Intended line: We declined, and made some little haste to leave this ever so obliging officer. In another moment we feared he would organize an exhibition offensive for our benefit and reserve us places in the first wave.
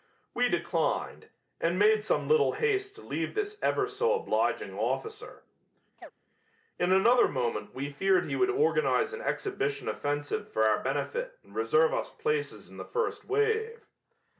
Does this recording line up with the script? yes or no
yes